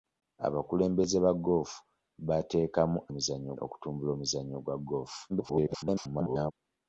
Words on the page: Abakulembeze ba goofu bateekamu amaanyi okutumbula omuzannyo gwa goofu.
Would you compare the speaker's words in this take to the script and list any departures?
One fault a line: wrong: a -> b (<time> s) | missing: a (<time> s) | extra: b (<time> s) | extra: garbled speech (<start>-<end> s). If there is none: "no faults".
wrong: amaanyi -> omuzannyo (3.1 s)
extra: garbled speech (5.3-6.5 s)